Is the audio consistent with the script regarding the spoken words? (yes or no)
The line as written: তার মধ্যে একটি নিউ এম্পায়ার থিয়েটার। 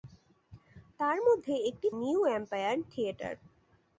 yes